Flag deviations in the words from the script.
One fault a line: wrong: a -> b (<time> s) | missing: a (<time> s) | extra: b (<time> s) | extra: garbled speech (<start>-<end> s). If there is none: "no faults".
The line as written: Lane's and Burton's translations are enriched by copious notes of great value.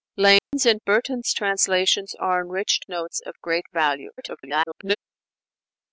missing: by copious (2.9 s)
extra: garbled speech (4.2-5.0 s)